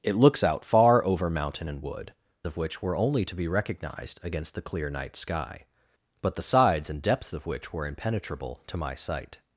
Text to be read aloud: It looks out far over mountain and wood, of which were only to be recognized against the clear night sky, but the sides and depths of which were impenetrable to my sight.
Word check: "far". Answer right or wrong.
right